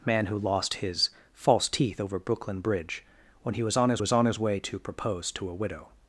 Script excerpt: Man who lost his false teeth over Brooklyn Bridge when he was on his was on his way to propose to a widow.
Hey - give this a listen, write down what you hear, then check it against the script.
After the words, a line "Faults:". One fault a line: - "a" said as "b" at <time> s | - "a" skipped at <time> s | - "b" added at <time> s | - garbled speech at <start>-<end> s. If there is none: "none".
Man who lost his false teeth over Brooklyn Bridge when he was on his was on his way to propose to a widow.
Faults:
none